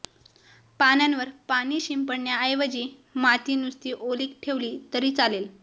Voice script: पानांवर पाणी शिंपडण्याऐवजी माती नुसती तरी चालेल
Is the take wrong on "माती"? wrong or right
right